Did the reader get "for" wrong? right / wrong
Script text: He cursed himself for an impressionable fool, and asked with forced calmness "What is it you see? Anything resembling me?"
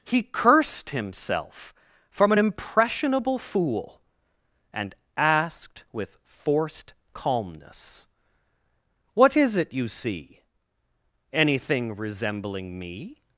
wrong